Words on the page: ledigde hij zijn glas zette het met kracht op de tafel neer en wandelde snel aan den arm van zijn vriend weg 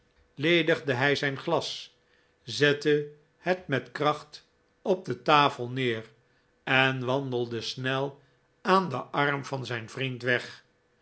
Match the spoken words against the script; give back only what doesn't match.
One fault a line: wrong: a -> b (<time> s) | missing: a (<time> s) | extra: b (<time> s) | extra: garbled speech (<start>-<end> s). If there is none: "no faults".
no faults